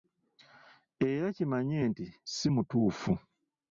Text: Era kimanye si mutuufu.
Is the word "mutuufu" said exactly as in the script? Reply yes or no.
yes